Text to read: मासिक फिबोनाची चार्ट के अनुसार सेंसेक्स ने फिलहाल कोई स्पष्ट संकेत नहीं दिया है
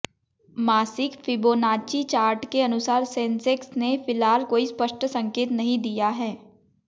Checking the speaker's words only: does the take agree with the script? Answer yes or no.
yes